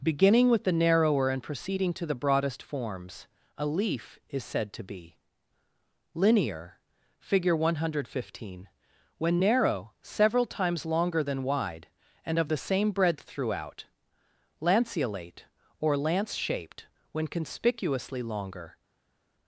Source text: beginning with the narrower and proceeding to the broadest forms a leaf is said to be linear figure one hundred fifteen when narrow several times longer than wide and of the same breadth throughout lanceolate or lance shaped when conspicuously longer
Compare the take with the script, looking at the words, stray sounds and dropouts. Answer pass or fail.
pass